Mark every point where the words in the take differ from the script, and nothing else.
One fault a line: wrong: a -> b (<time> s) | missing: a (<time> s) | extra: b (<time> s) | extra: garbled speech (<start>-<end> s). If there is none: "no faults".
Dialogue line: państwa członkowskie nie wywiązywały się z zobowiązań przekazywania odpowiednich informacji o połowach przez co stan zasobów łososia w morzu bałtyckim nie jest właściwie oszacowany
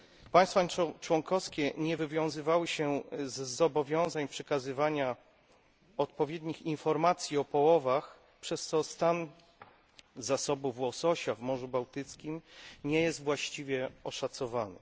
no faults